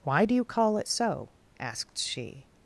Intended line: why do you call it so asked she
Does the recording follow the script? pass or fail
pass